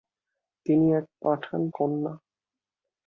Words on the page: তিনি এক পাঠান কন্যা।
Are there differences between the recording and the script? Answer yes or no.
no